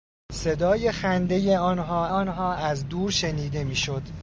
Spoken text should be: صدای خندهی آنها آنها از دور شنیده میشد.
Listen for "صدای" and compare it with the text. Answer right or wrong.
right